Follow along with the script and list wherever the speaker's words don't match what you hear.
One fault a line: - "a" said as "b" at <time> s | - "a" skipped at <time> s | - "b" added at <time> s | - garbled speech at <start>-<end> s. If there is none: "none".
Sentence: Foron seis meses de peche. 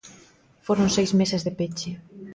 none